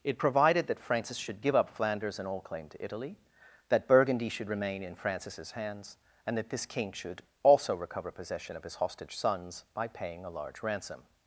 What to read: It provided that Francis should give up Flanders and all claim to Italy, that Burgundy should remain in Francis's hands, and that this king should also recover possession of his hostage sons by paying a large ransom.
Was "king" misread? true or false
false